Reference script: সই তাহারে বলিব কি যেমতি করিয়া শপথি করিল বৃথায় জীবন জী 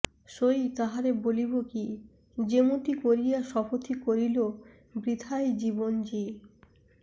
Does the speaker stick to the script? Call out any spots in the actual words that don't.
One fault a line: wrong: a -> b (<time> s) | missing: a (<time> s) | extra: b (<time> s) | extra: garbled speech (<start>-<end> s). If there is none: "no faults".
no faults